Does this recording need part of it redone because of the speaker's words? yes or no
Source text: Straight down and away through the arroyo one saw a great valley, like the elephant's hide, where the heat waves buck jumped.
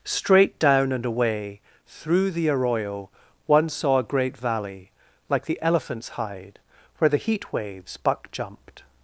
no